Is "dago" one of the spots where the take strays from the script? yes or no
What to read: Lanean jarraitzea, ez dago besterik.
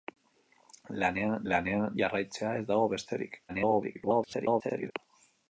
no